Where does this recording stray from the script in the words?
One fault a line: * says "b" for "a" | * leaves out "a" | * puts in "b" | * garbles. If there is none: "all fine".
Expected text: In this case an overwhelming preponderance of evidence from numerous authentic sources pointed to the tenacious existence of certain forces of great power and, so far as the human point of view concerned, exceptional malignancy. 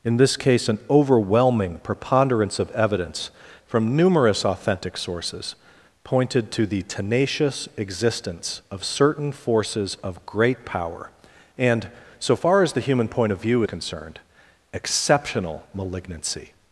all fine